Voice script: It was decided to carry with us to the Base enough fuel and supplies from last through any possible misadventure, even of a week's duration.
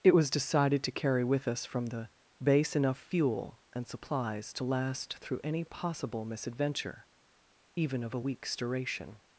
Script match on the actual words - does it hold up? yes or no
no